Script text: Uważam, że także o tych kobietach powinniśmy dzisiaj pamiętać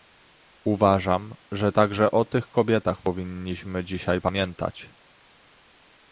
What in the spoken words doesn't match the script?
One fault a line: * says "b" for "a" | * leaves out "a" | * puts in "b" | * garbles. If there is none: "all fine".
all fine